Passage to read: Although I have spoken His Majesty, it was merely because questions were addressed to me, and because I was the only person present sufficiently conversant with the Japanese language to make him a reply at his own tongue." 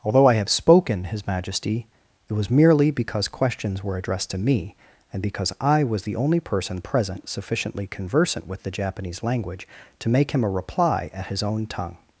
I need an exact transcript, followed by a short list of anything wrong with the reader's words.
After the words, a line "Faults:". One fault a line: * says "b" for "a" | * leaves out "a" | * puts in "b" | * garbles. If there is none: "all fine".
Although I have spoken His Majesty, it was merely because questions were addressed to me, and because I was the only person present sufficiently conversant with the Japanese language to make him a reply at his own tongue."
Faults:
all fine